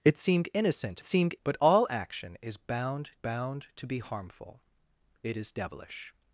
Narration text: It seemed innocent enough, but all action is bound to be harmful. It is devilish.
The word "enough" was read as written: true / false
false